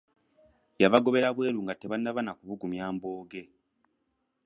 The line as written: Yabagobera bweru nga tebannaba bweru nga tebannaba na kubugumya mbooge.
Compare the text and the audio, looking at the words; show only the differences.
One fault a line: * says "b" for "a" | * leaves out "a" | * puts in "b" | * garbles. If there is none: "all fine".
* leaves out "bweru nga tebannaba"